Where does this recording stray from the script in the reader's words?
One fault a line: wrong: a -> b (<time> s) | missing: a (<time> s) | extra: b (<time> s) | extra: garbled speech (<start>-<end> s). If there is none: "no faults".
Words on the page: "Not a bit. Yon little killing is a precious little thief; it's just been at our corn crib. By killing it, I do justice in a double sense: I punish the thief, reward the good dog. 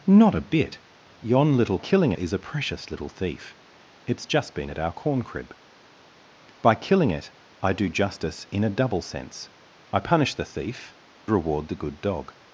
no faults